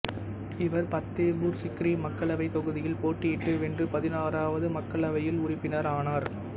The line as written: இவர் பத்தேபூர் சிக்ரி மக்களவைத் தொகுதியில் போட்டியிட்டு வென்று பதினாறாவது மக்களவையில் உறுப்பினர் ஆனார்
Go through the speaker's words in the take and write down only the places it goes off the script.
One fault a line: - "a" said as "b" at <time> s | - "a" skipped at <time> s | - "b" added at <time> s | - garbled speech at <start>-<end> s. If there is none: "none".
none